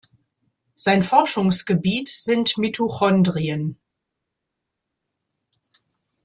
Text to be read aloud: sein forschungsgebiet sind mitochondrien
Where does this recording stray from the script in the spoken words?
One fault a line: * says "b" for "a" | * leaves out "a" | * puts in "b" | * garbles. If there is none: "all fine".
all fine